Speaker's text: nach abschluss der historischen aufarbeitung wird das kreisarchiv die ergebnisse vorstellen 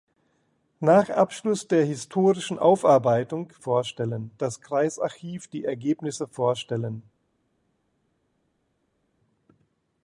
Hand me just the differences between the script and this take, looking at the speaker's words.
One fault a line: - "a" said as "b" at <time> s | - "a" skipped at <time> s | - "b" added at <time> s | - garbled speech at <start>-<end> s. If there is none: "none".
- "wird" said as "vorstellen" at 3.6 s